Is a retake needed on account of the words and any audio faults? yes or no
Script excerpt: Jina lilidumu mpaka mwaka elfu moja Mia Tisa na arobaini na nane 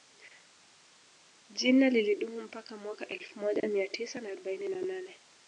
no